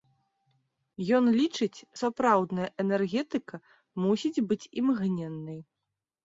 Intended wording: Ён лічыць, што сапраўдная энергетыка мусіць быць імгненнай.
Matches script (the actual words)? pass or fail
fail